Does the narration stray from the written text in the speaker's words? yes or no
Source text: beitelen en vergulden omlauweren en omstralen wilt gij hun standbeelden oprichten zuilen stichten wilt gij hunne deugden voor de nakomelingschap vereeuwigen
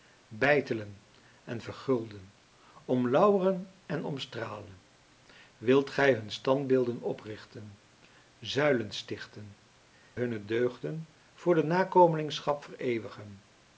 yes